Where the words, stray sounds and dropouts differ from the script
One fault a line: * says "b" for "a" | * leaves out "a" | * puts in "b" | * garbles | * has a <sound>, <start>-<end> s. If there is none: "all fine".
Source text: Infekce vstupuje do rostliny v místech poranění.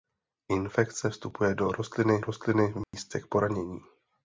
* puts in "rostliny"
* has a dropout, 2.8-2.9 s